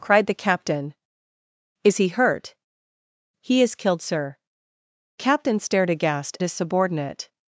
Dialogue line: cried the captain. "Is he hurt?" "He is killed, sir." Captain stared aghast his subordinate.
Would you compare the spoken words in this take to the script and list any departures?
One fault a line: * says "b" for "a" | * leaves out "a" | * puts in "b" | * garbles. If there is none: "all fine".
all fine